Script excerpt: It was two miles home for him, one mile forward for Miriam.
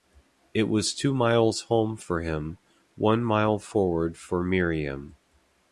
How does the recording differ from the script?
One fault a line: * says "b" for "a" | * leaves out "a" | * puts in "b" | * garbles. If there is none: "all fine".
all fine